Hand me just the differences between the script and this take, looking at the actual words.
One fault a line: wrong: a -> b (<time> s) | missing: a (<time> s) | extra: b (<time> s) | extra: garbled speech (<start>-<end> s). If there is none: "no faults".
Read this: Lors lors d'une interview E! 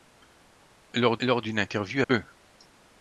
no faults